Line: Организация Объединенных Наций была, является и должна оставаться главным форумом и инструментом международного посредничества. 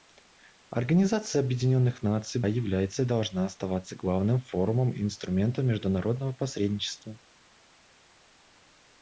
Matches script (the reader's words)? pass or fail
fail